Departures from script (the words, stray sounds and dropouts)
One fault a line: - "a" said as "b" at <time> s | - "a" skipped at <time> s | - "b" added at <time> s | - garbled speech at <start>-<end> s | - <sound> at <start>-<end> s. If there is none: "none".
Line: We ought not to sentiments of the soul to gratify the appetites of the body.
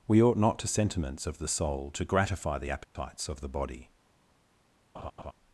- dropout at 2.8-3.0 s
- laugh at 4.9-5.3 s